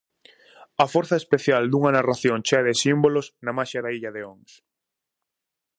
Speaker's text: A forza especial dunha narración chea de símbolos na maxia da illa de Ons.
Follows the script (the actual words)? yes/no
yes